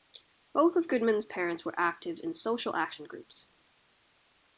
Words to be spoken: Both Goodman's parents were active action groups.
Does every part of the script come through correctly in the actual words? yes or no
no